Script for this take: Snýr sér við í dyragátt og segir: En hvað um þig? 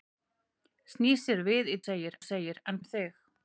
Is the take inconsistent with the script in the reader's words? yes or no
yes